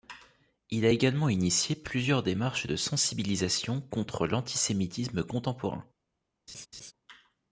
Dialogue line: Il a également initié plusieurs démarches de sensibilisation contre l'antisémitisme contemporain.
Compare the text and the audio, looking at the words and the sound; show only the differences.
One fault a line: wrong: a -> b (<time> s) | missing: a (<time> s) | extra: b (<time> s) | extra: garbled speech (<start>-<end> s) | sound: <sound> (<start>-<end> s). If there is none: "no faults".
sound: laugh (6.5-6.9 s)